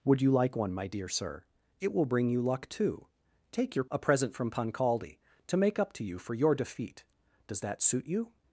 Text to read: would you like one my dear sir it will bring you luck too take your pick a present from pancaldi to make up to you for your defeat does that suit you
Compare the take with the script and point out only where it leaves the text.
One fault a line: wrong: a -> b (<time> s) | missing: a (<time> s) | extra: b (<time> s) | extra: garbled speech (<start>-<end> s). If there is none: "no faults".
missing: pick (3.9 s)